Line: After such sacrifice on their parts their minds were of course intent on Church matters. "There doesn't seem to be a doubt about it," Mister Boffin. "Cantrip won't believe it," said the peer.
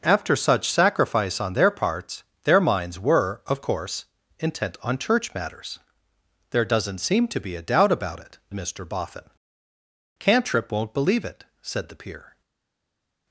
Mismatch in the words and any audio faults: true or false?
false